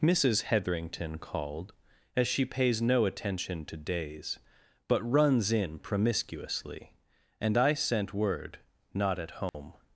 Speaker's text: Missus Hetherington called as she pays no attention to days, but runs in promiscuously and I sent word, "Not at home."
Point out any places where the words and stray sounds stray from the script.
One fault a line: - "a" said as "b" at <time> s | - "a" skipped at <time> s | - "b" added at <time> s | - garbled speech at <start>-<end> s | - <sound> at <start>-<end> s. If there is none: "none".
- dropout at 9.5-9.5 s